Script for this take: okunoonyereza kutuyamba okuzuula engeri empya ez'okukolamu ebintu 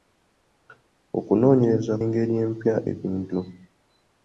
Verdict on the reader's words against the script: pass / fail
fail